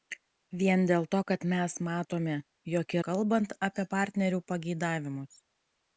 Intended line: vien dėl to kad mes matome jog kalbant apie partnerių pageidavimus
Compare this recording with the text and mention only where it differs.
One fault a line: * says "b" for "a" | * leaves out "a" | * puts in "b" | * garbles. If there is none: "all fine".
all fine